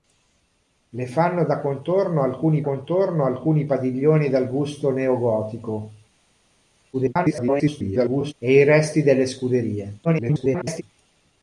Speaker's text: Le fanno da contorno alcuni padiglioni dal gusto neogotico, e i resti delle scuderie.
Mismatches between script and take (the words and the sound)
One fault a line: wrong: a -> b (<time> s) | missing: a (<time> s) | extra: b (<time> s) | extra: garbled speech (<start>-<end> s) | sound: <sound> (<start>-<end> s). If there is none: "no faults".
extra: contorno alcuni (2.6 s)
extra: garbled speech (6.9-8.3 s)
extra: garbled speech (10.0-10.8 s)